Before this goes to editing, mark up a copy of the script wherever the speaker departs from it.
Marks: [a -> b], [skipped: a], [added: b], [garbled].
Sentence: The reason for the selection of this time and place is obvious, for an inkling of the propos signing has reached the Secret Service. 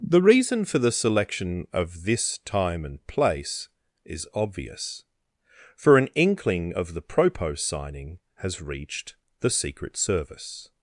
The reason for the selection of this time and place is obvious, for an inkling of the propos signing has reached the Secret Service.